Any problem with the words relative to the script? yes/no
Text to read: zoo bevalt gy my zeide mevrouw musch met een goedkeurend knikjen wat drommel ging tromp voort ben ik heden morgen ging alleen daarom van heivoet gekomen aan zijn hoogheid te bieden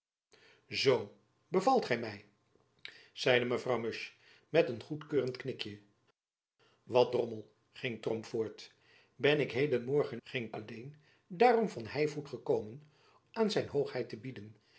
no